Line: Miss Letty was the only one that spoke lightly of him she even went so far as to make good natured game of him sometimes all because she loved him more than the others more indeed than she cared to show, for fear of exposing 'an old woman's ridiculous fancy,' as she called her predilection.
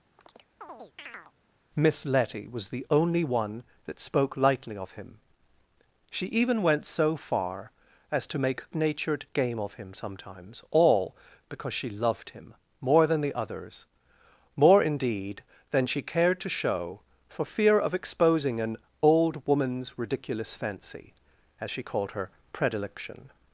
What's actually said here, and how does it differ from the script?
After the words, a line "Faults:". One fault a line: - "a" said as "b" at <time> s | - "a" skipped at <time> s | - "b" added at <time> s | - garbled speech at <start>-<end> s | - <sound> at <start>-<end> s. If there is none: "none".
Miss Letty was the only one that spoke lightly of him she even went so far as to make natured game of him sometimes all because she loved him more than the others more indeed than she cared to show, for fear of exposing 'an old woman's ridiculous fancy,' as she called her predilection.
Faults:
- chirp at 0.2-1.3 s
- "good" skipped at 8.6 s